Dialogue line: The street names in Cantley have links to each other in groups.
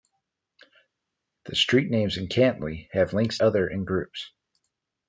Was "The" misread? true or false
false